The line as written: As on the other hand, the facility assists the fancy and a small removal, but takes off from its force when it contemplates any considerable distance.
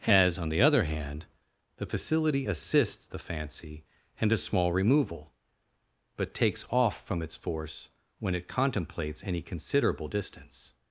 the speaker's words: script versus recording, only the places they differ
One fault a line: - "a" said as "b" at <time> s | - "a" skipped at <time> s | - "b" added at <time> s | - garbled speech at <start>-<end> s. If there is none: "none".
none